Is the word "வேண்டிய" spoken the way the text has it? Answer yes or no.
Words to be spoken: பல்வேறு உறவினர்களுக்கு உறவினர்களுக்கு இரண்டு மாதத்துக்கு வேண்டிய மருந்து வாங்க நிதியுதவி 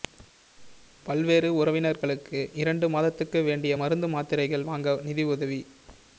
yes